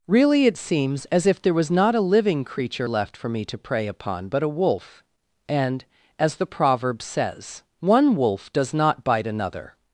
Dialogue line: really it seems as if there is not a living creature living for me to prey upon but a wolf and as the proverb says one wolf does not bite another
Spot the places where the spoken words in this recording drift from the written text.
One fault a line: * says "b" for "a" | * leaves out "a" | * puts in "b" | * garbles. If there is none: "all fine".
* says "was" for "is"
* says "left" for "living"